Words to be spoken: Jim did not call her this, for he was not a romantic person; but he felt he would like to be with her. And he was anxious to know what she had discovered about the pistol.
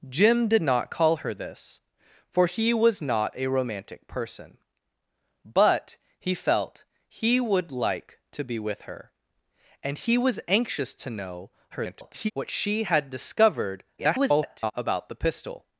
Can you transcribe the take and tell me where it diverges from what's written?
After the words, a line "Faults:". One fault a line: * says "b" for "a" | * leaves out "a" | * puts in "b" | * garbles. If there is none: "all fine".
Jim did not call her this, for he was not a romantic person; but he felt he would like to be with her. And he was anxious to know [garbled] what she had discovered [garbled] about the pistol.
Faults:
* garbles
* garbles